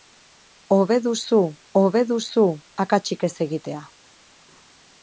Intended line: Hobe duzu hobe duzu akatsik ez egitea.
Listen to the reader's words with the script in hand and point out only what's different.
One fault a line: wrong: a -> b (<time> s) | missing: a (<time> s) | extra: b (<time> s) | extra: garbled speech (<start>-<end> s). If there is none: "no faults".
no faults